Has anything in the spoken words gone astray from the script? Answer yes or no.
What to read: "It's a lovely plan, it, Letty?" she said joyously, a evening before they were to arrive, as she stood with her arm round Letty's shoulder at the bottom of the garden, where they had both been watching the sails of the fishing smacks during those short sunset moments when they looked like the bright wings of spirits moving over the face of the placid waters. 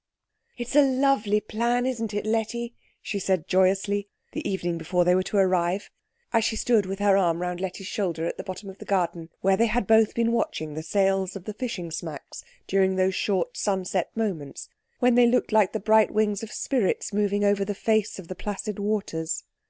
yes